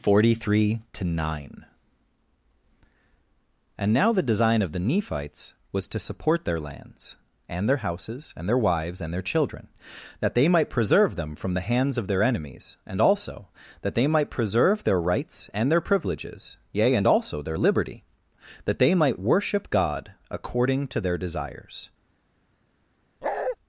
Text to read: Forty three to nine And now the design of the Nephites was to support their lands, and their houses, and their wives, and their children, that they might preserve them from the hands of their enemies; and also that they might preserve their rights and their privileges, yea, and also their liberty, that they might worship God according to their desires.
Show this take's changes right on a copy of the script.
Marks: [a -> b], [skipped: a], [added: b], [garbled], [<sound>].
Forty three to nine And now the design of the Nephites was to support their lands, and their houses, and their wives, and their children, that they might preserve them from the hands of their enemies; and also that they might preserve their rights and their privileges, yea, and also their liberty, that they might worship God according to their desires. [bark]